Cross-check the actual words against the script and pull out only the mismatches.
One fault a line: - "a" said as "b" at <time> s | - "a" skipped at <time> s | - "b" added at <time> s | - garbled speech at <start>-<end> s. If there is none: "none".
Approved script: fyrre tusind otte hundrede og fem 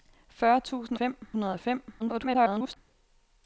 - "otte" said as "fem" at 0.9 s
- garbled speech at 2.0-2.8 s